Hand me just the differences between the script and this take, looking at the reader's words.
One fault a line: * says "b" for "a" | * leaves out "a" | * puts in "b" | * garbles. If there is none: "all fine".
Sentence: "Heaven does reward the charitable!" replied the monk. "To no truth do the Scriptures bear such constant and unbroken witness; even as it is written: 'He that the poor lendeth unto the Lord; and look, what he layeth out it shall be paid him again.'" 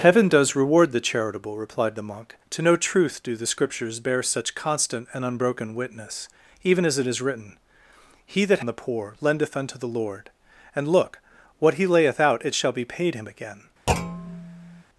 all fine